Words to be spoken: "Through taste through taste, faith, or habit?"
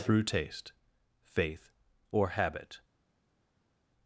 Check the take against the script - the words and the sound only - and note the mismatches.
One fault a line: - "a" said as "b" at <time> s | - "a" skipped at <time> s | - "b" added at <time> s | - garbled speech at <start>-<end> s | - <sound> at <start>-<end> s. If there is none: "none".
- "through taste" skipped at 0.7 s